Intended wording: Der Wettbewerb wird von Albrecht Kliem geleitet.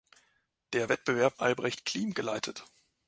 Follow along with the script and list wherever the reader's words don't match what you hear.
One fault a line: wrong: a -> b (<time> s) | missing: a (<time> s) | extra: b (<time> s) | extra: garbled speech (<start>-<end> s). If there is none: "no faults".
missing: wird von (1.4 s)